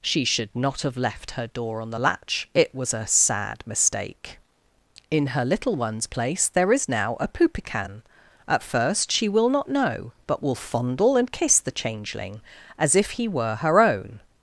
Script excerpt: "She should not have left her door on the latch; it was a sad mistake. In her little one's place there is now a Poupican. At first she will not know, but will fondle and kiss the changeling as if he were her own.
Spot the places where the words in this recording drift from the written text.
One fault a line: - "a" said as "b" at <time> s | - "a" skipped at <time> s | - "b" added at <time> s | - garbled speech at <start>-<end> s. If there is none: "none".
none